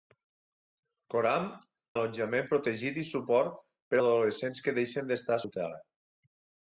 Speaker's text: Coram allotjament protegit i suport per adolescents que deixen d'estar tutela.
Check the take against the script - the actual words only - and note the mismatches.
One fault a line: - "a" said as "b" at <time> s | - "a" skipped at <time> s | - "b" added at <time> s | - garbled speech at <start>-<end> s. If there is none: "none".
none